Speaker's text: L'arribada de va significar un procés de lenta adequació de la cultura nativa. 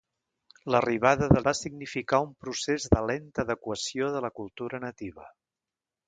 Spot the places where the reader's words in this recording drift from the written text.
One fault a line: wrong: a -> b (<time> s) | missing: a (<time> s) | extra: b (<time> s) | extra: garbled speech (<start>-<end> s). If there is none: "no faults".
no faults